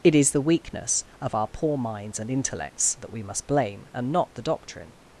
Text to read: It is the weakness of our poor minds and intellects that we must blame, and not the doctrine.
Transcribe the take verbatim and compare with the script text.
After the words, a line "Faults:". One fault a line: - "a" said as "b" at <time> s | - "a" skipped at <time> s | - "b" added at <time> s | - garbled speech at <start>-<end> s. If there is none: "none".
It is the weakness of our poor minds and intellects that we must blame, and not the doctrine.
Faults:
none